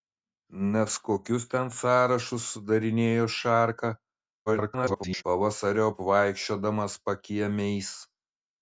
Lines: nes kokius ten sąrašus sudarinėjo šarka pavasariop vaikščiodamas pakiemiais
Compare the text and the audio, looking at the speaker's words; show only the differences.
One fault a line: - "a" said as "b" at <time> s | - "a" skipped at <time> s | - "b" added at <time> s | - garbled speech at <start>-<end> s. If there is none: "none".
- garbled speech at 4.5-5.2 s